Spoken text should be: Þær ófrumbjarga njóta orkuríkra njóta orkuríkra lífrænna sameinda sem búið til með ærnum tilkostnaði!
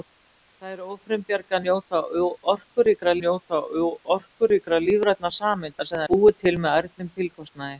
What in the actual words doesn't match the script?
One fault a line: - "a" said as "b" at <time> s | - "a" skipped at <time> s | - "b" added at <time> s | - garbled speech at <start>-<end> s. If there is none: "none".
none